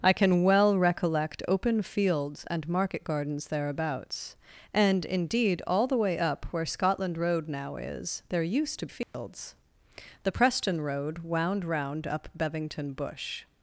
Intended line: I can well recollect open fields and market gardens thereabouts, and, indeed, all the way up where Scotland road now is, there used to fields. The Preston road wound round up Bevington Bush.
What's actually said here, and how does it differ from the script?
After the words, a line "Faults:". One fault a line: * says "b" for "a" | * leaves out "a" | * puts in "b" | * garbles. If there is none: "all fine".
I can well recollect open fields and market gardens thereabouts, and, indeed, all the way up where Scotland road now is, there used to fields. The Preston road wound round up Bevington Bush.
Faults:
all fine